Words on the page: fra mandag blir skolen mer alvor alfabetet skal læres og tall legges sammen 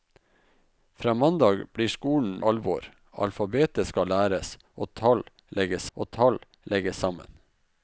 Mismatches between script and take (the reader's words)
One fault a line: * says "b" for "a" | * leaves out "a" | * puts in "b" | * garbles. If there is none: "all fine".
* leaves out "mer"
* puts in "og tall legges"